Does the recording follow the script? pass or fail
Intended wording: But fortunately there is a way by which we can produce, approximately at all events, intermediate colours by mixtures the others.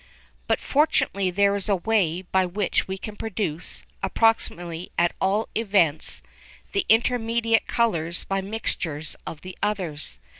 fail